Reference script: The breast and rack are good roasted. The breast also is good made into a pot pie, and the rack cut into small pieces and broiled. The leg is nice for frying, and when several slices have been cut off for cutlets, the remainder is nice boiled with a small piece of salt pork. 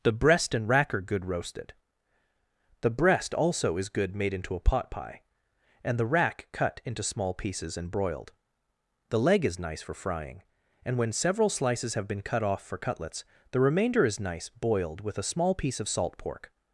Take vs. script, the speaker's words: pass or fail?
pass